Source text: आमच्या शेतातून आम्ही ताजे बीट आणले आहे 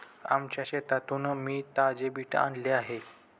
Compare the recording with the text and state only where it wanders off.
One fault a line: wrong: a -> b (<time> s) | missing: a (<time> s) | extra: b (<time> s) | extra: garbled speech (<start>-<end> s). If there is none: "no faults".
wrong: आम्ही -> मी (1.4 s)